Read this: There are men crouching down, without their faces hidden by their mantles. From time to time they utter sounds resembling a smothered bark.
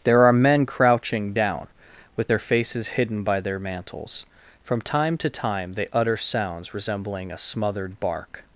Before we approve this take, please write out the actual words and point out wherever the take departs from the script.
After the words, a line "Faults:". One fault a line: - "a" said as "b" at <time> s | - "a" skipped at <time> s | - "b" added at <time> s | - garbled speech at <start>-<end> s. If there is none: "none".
There are men crouching down, with their faces hidden by their mantles. From time to time they utter sounds resembling a smothered bark.
Faults:
- "without" said as "with" at 2.1 s